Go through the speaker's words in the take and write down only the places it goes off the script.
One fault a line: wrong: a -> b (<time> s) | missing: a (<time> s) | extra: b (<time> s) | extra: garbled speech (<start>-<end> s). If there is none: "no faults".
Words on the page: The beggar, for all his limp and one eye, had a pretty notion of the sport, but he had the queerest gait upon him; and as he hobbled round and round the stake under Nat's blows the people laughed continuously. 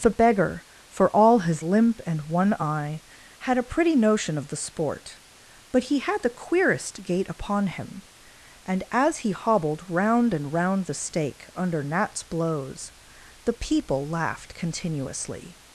no faults